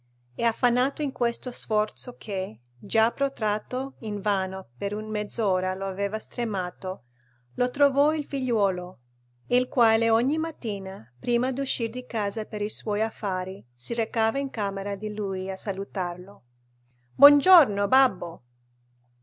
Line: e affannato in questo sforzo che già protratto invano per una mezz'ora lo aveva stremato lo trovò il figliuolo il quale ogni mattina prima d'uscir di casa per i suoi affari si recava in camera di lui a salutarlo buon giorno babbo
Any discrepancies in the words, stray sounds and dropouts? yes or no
no